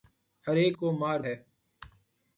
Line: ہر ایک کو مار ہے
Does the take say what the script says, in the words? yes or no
yes